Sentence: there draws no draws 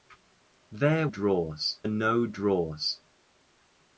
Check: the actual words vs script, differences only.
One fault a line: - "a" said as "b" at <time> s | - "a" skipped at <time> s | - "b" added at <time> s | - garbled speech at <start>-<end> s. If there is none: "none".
none